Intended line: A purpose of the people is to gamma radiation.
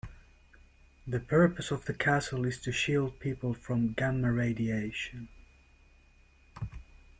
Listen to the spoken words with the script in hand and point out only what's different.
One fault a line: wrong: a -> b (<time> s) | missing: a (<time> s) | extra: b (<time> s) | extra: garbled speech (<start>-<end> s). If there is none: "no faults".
wrong: A -> The (1.1 s)
wrong: people -> castle (1.9 s)
extra: shield people from (2.7 s)